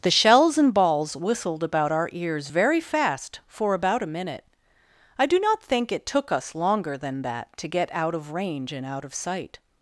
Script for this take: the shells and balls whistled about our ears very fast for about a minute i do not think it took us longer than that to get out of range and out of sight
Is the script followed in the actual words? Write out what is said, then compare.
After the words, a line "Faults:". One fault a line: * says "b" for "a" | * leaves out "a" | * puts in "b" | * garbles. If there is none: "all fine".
the shells and balls whistled about our ears very fast for about a minute i do not think it took us longer than that to get out of range and out of sight
Faults:
all fine